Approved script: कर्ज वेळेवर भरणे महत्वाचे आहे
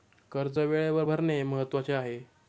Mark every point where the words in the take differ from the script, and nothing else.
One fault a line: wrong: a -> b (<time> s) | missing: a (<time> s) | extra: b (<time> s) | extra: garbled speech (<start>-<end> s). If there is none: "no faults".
no faults